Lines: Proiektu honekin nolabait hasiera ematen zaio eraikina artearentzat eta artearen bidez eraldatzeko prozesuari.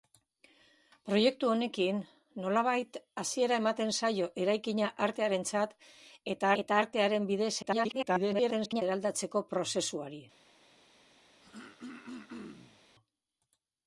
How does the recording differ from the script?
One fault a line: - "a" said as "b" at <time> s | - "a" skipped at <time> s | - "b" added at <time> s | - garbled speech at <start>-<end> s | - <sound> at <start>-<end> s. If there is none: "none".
- "eta" added at 6.6 s
- garbled speech at 7.6-8.8 s
- throat clearing at 11.4-12.8 s